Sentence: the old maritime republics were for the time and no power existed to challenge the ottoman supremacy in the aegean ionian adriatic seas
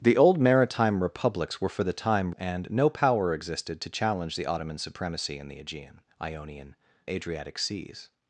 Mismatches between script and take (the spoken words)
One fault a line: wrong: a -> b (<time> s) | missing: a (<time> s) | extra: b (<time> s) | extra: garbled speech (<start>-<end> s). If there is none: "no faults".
no faults